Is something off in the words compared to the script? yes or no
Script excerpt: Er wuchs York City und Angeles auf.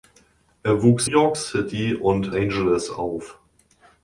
no